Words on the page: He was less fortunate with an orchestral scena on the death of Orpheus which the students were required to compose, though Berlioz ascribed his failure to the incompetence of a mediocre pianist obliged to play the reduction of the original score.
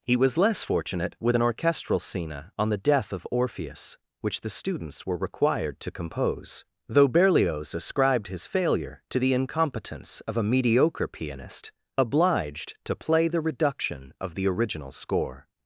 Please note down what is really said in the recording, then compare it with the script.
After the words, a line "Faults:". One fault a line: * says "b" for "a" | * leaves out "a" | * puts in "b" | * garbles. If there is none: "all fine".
He was less fortunate with an orchestral scena on the death of Orpheus which the students were required to compose, though Berlioz ascribed his failure to the incompetence of a mediocre pianist obliged to play the reduction of the original score.
Faults:
all fine